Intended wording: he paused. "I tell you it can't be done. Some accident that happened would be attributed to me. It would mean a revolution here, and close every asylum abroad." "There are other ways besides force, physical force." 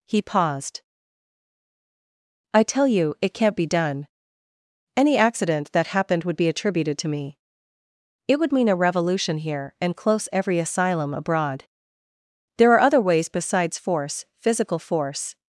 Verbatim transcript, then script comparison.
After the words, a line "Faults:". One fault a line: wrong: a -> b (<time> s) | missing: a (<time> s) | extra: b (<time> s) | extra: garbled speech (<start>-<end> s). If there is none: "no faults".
he paused. "I tell you it can't be done. Any accident that happened would be attributed to me. It would mean a revolution here, and close every asylum abroad." "There are other ways besides force, physical force."
Faults:
wrong: Some -> Any (5.0 s)